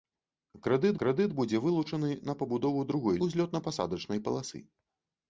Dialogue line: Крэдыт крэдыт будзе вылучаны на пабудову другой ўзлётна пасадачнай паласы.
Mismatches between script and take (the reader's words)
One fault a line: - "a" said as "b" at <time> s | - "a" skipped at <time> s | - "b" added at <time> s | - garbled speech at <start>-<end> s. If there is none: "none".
none